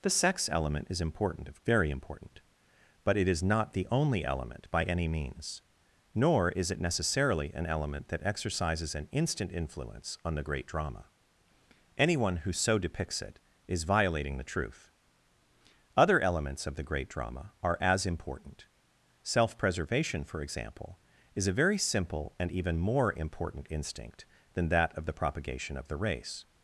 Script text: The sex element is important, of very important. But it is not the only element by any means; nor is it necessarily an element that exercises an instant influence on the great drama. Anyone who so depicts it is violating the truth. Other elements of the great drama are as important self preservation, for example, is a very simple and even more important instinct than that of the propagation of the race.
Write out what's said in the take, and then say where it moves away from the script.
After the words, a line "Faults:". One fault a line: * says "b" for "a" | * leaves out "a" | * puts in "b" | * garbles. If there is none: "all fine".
The sex element is important, of very important. But it is not the only element by any means; nor is it necessarily an element that exercises an instant influence on the great drama. Anyone who so depicts it is violating the truth. Other elements of the great drama are as important self preservation, for example, is a very simple and even more important instinct than that of the propagation of the race.
Faults:
all fine